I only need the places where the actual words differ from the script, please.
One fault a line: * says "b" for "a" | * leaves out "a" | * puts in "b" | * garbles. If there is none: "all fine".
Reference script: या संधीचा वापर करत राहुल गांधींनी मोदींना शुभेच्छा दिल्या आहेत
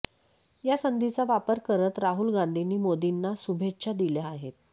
all fine